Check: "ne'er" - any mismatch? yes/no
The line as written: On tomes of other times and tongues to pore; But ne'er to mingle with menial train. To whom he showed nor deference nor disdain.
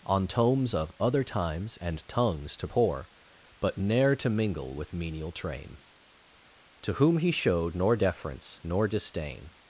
no